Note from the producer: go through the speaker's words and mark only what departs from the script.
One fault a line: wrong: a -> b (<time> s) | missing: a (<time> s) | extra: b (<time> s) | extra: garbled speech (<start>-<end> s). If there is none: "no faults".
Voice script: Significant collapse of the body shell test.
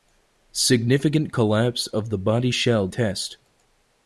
no faults